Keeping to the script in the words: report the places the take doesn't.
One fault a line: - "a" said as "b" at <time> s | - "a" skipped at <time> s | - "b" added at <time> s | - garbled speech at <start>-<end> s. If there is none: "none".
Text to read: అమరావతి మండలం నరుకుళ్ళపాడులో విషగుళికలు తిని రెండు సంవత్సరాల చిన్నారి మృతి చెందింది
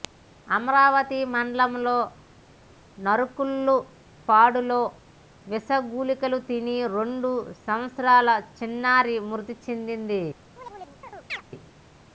none